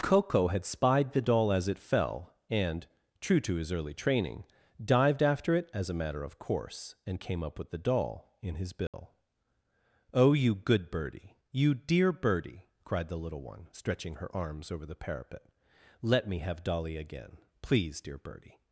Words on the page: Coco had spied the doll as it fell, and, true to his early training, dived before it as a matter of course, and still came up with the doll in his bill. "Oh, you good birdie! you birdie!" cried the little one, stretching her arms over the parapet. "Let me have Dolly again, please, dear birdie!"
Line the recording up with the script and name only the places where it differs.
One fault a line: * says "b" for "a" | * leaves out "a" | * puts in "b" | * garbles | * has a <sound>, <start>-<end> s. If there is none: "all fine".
* says "after" for "before"
* leaves out "still"
* has a dropout, 8.9-8.9 s
* puts in "dear"